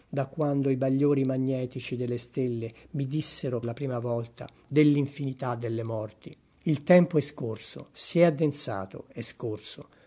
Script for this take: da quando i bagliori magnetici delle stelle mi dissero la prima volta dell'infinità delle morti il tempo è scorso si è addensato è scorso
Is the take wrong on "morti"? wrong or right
right